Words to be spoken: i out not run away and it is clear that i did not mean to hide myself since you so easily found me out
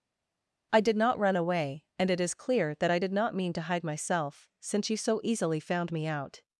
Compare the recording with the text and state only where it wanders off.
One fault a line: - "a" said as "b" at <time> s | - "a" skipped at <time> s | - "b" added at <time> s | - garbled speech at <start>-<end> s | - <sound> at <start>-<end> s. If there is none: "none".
- "out" said as "did" at 0.8 s